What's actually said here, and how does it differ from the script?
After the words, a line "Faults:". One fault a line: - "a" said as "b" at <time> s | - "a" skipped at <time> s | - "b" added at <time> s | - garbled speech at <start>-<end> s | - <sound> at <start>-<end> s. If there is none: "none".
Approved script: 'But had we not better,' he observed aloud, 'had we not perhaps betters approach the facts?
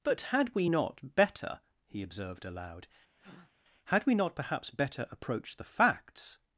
'But had we not better,' he observed aloud, 'had we not perhaps better approach the facts?
Faults:
- breath at 3.2-3.5 s
- "betters" said as "better" at 4.7 s